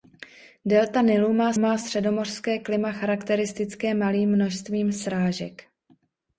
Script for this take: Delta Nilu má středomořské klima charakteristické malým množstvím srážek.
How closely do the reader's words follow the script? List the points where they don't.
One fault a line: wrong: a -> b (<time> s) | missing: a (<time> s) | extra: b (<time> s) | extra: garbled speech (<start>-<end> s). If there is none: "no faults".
extra: má (1.6 s)